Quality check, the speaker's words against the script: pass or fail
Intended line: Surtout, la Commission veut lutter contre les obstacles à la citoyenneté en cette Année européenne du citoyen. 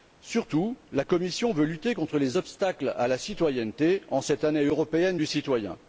pass